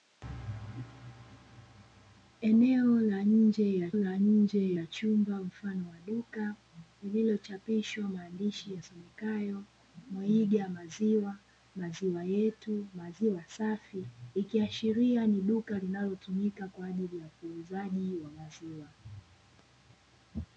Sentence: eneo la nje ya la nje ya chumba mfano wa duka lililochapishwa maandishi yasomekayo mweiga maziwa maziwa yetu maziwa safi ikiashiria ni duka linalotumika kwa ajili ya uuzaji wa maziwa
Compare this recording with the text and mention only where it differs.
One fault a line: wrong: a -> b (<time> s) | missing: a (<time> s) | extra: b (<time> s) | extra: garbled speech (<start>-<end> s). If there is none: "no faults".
no faults